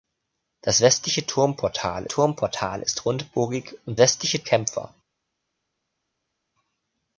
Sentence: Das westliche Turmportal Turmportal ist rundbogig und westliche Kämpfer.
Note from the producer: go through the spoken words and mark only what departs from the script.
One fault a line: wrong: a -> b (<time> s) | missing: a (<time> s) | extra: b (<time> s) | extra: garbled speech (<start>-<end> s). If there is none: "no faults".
no faults